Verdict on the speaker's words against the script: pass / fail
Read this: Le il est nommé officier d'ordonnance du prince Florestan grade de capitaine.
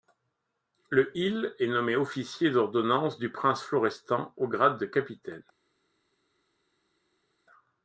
fail